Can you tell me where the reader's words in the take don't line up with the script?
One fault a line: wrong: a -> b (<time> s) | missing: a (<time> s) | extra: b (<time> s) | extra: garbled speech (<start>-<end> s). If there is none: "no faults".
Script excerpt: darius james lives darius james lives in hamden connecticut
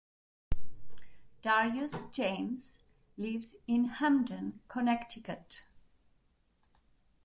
missing: darius james lives (3.5 s)